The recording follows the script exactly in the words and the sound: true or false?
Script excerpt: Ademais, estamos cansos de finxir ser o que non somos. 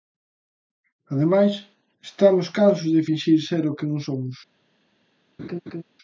false